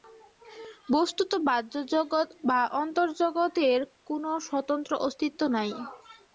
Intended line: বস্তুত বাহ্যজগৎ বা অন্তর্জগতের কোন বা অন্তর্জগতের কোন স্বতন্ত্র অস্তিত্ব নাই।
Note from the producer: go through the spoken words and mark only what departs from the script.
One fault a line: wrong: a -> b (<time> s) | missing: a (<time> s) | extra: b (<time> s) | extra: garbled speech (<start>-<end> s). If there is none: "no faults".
missing: বা অন্তর্জগতের কোন (4.2 s)